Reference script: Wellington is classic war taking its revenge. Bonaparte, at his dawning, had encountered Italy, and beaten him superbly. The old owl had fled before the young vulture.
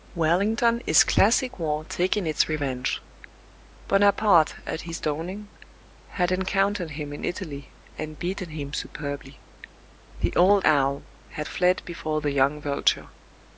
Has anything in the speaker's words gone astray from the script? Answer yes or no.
yes